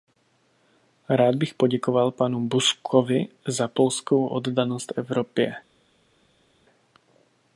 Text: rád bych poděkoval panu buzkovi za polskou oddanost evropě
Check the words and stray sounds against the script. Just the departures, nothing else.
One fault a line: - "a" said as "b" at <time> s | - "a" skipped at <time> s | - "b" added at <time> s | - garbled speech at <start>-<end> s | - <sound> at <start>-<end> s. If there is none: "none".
none